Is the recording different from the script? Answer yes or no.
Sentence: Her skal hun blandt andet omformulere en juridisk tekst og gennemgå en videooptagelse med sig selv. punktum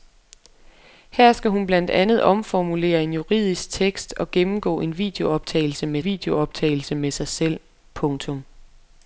yes